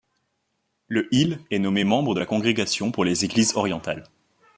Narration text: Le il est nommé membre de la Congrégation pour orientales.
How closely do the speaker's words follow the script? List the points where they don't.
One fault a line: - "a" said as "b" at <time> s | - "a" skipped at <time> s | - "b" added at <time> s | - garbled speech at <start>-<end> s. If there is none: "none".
- "les Églises" added at 3.1 s